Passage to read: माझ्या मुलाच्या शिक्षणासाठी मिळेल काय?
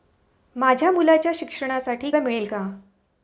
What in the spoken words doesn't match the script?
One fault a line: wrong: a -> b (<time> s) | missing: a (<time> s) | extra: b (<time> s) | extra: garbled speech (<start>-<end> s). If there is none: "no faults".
no faults